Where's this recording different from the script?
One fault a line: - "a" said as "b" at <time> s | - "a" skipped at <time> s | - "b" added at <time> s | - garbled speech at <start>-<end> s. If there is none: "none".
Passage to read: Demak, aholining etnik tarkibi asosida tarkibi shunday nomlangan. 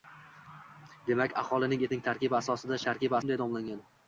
none